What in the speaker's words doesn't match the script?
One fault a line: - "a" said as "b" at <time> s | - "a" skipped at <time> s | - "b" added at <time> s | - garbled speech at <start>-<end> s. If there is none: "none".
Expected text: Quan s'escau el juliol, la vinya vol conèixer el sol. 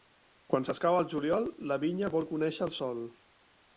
none